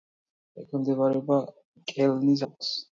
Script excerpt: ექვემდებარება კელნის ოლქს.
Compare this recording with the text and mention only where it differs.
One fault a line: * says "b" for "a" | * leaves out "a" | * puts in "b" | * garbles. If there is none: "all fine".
all fine